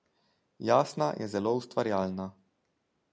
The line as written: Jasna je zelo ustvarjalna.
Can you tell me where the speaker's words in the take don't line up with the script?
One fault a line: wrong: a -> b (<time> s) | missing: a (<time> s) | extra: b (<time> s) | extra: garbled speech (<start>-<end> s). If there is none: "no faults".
no faults